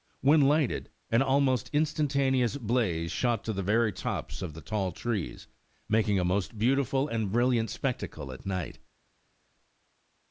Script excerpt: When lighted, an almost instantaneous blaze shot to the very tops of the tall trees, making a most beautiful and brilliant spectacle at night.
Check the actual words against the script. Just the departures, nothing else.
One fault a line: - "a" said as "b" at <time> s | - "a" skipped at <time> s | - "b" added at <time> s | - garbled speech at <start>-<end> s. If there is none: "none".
none